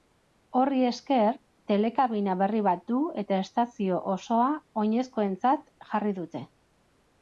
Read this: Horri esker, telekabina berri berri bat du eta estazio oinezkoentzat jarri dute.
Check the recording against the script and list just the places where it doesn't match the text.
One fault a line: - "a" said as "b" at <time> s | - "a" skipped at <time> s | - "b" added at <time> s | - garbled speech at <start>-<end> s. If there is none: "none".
- "berri" skipped at 2.6 s
- "osoa" added at 4.2 s